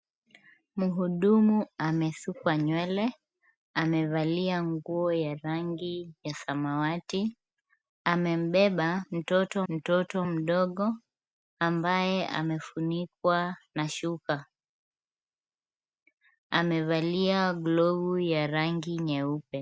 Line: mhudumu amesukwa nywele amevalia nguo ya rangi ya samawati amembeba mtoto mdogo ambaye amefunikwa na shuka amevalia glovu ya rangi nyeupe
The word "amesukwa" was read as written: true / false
true